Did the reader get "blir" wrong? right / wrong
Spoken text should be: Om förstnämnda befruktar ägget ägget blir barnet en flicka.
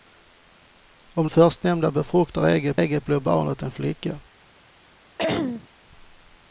right